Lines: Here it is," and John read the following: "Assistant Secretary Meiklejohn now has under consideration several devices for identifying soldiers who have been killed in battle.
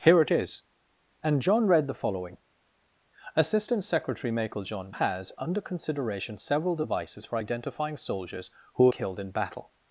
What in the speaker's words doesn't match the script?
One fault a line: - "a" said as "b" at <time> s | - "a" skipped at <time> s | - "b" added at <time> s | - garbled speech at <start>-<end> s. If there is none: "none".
- "now" skipped at 5.0 s
- "have been" skipped at 8.9 s